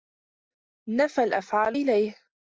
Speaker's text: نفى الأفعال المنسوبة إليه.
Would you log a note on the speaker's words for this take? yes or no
yes